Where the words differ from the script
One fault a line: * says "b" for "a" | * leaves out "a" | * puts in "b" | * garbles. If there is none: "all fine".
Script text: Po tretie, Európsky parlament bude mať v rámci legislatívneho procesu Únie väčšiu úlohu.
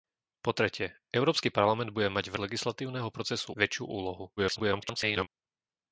* leaves out "rámci"
* leaves out "Únie"
* garbles